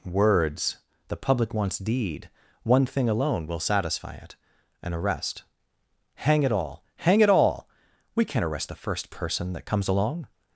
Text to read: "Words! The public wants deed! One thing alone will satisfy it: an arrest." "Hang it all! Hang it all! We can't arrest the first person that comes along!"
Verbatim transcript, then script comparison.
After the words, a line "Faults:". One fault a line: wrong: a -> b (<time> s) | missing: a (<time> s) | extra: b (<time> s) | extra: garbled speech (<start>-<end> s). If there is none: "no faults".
"Words! The public wants deed! One thing alone will satisfy it: an arrest." "Hang it all! Hang it all! We can't arrest the first person that comes along!"
Faults:
no faults